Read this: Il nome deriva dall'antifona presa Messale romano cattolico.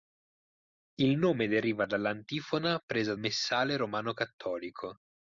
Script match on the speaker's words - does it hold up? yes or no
yes